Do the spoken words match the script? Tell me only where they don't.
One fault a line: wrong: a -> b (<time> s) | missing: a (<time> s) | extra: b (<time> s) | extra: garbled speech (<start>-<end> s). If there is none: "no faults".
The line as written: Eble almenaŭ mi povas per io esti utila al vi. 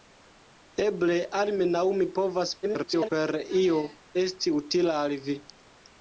extra: garbled speech (2.6-3.1 s)